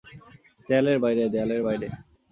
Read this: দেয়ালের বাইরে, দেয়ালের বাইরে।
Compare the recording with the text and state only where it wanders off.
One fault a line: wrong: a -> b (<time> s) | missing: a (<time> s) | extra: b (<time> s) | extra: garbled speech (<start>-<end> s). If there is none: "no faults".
no faults